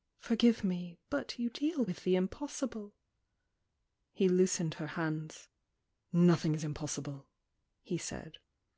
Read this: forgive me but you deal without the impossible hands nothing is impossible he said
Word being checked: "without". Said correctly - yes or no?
no